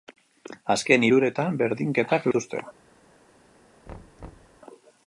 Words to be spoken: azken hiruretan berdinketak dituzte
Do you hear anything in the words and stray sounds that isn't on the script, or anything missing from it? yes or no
yes